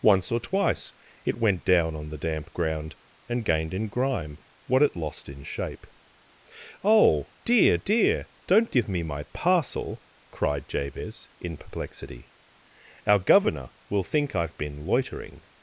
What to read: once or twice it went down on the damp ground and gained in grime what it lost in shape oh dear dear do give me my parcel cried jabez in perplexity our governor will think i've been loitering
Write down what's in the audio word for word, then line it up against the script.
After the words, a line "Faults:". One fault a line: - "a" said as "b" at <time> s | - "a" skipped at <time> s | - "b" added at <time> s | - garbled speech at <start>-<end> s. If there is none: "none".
once or twice it went down on the damp ground and gained in grime what it lost in shape oh dear dear don't give me my parcel cried jabez in perplexity our governor will think i've been loitering
Faults:
- "do" said as "don't" at 8.5 s